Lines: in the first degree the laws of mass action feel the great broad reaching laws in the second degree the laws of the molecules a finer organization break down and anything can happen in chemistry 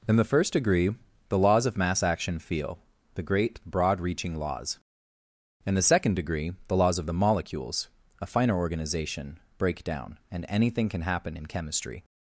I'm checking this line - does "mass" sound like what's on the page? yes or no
yes